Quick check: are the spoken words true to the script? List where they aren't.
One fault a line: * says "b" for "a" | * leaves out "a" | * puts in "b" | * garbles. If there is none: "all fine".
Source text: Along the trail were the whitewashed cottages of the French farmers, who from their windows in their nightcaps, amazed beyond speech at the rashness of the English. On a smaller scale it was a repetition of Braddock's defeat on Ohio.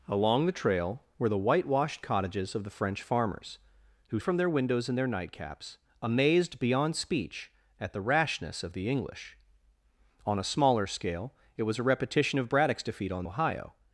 all fine